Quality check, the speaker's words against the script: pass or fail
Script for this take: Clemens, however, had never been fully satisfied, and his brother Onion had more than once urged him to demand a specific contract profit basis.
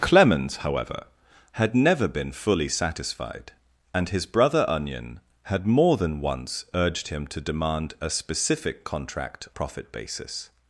pass